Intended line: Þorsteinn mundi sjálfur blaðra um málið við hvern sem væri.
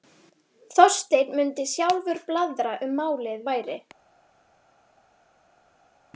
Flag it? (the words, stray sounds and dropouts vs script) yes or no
yes